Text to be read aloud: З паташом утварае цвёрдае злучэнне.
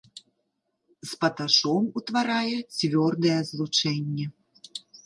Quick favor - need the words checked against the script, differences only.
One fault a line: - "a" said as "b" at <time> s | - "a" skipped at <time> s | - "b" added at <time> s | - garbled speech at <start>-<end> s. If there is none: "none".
none